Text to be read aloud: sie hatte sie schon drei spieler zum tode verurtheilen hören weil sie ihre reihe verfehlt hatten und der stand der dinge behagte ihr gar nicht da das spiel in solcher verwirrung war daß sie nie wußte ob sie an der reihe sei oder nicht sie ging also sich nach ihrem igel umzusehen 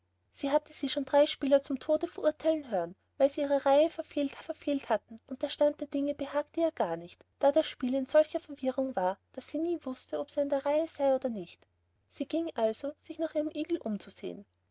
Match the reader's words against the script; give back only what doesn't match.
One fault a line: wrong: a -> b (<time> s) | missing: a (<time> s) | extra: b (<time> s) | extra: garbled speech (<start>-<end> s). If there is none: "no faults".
extra: verfehlt (4.4 s)